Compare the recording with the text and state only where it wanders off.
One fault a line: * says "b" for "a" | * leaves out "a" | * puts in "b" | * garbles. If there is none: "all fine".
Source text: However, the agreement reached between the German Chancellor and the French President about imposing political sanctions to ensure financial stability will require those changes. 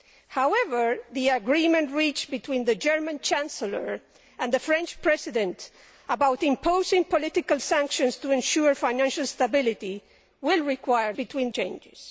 * says "between" for "those"